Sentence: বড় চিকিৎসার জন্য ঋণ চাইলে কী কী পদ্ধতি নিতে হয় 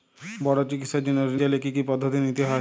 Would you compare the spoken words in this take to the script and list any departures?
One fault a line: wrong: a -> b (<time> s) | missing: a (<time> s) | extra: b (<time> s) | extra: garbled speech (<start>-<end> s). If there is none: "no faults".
no faults